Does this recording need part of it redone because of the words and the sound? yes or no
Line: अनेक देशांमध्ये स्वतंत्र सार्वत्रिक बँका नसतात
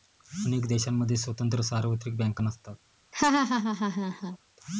yes